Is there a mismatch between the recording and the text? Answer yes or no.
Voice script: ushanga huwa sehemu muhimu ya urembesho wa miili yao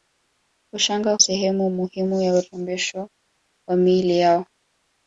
yes